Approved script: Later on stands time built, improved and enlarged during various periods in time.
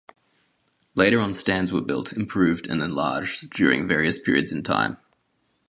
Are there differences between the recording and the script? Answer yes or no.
yes